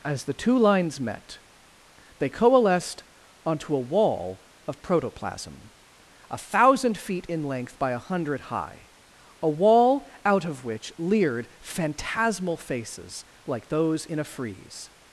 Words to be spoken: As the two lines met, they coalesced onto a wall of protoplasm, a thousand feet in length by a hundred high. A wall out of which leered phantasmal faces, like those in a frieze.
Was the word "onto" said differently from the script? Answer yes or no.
no